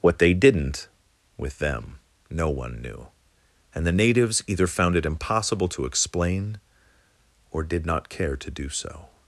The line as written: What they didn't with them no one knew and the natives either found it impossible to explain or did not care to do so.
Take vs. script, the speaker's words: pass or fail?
pass